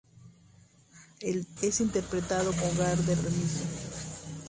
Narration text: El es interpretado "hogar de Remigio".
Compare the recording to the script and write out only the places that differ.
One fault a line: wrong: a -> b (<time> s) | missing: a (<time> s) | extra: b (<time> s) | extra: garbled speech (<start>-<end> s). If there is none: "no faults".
no faults